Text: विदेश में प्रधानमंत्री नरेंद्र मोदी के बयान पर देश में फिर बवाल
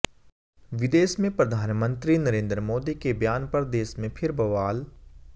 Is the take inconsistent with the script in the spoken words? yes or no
no